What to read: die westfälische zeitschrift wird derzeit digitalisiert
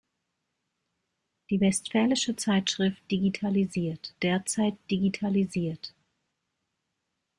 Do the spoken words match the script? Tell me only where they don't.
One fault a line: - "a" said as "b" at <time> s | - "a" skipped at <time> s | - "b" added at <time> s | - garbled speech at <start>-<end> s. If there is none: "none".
- "wird" said as "digitalisiert" at 3.1 s